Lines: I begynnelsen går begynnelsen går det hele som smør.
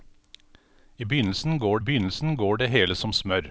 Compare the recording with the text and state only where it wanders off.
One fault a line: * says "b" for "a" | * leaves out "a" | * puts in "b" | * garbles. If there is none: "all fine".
all fine